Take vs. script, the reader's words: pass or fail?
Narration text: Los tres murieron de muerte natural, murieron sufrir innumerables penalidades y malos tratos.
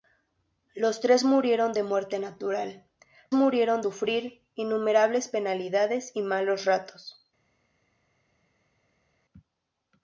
pass